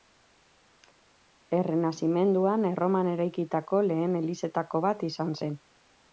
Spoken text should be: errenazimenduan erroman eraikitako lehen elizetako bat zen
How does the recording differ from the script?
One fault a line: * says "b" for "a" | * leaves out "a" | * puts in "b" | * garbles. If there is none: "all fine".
* puts in "izan"